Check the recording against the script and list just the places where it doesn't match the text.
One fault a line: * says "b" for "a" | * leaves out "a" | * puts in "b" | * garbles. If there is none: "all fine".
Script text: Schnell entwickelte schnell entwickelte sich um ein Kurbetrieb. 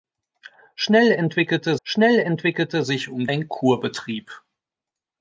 all fine